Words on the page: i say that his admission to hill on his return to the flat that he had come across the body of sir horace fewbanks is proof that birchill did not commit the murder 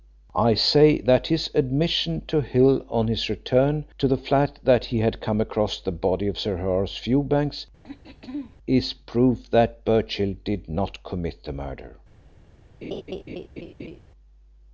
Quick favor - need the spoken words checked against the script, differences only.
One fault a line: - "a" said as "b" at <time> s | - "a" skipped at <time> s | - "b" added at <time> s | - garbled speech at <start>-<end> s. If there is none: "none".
none